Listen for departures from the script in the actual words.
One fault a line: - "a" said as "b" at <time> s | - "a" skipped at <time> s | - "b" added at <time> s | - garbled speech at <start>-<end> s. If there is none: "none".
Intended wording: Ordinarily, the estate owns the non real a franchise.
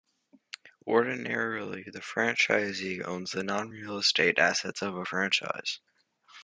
- "estate" said as "franchisee" at 2.0 s
- "estate assets of" added at 4.0 s